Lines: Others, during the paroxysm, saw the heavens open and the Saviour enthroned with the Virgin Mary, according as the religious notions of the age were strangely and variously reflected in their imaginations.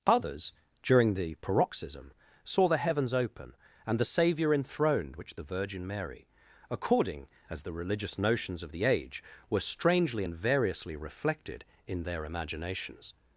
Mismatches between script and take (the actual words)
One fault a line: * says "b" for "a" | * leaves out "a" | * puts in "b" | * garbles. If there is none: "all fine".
* says "which" for "with"